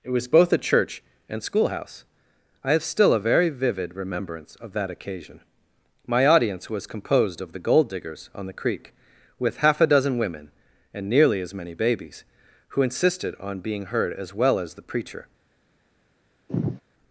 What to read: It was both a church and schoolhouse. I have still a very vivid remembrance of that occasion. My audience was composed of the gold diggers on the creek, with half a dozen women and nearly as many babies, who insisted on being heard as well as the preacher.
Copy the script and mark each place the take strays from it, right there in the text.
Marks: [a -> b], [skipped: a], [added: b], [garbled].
It was both a church and schoolhouse. I have still a very vivid remembrance of that occasion. My audience was composed of the gold diggers on the creek, with half a dozen women and nearly as many babies, who insisted on being heard as well as the preacher.